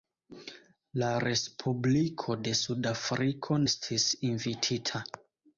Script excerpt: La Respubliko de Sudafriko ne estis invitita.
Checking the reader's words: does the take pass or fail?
fail